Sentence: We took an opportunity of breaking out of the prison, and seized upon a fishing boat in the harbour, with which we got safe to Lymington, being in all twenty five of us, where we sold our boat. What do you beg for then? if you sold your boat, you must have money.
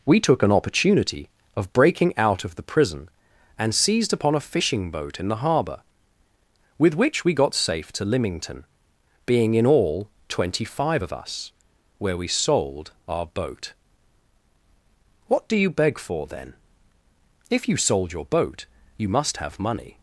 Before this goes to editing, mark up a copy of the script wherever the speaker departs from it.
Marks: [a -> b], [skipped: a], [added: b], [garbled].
We took an opportunity of breaking out of the prison, and seized upon a fishing boat in the harbour, with which we got safe to Lymington, being in all twenty five of us, where we sold our boat. What do you beg for then? if you sold your boat, you must have money.